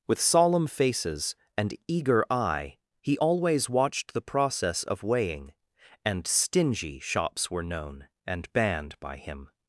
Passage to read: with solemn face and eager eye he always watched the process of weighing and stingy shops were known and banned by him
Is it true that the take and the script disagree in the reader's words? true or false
true